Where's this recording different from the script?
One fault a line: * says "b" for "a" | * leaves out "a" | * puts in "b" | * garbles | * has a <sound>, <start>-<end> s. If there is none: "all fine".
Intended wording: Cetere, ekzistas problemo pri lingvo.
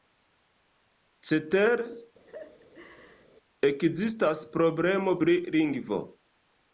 * has a laugh, 2.3-3.3 s